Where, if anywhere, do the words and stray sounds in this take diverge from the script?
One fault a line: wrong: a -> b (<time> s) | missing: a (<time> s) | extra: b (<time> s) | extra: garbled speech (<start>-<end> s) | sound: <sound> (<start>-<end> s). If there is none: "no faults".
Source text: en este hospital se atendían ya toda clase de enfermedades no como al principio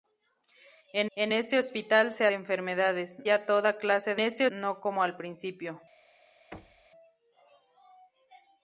extra: en (1.2 s)
wrong: atendían -> enfermedades (2.3 s)
wrong: enfermedades -> este (4.2 s)
sound: thud (6.5-6.9 s)